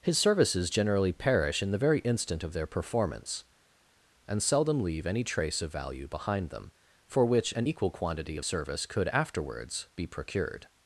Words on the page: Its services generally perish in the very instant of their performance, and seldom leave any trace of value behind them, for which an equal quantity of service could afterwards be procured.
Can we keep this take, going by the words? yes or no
no